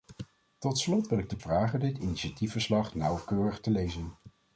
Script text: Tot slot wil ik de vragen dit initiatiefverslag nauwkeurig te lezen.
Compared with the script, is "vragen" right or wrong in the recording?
right